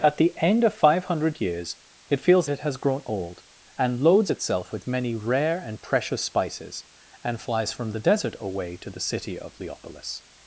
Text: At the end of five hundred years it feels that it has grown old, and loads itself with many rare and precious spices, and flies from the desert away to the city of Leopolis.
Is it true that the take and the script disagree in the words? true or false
true